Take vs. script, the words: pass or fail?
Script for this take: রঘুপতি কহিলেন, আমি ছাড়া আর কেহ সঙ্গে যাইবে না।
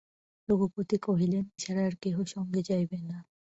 fail